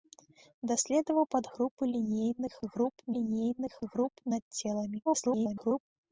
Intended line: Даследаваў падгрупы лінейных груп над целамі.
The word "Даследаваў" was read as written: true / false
true